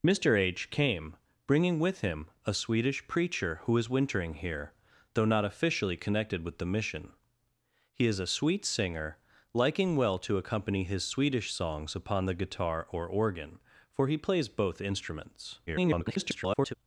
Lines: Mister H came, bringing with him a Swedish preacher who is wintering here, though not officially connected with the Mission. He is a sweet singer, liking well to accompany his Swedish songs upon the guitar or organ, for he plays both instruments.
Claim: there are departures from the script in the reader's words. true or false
true